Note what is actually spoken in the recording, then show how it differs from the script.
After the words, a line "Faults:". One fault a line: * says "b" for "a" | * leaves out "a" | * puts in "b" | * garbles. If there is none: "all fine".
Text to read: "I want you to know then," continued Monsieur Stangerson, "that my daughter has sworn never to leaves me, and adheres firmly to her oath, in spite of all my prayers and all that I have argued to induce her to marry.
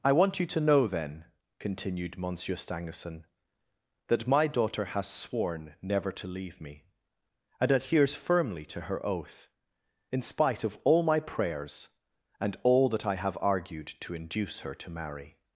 "I want you to know then," continued Monsieur Stangerson, "that my daughter has sworn never to leave me, and adheres firmly to her oath, in spite of all my prayers and all that I have argued to induce her to marry.
Faults:
* says "leave" for "leaves"